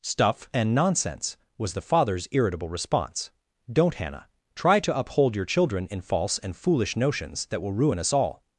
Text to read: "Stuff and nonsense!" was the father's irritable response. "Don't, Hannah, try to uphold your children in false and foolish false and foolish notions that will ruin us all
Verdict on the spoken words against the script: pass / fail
fail